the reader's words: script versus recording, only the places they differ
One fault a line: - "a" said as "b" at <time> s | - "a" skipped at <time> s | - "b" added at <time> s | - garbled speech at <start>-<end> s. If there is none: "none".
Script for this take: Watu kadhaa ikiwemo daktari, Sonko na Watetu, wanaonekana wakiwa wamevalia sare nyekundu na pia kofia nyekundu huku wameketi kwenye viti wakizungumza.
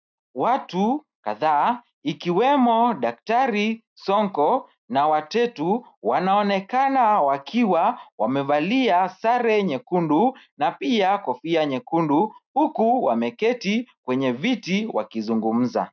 none